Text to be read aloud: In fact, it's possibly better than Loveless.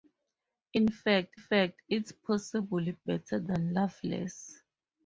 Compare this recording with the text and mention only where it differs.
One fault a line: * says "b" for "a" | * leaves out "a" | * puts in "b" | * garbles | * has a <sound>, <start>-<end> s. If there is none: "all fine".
* puts in "fact"